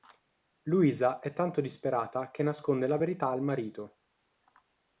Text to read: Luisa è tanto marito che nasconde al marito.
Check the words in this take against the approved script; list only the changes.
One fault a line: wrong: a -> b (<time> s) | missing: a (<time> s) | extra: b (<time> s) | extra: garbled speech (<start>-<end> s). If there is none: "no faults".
wrong: marito -> disperata (1.6 s)
extra: la verità (2.9 s)